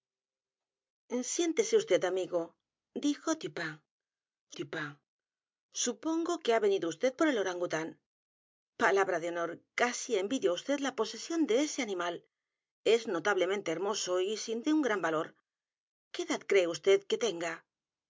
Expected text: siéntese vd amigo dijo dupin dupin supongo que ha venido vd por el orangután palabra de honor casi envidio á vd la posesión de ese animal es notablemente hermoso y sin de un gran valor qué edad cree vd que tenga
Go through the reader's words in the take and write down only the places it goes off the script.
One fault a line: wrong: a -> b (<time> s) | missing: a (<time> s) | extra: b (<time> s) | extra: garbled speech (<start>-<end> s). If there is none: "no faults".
no faults